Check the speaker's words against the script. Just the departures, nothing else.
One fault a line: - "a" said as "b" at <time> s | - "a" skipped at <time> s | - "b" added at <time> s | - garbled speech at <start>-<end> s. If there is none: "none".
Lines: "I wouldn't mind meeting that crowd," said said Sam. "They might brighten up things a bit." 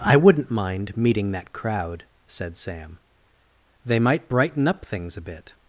- "said" skipped at 2.6 s